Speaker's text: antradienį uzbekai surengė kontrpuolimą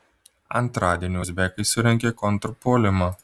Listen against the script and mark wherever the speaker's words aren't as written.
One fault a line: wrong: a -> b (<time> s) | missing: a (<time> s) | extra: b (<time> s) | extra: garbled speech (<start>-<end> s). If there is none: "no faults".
no faults